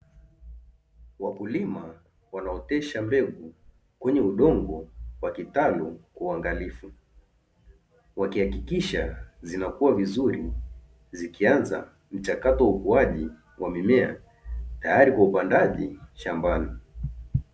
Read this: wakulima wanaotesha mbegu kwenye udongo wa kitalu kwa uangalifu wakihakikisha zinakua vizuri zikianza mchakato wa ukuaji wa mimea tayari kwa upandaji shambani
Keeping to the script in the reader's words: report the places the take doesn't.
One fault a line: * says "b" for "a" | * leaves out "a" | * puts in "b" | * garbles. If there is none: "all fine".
all fine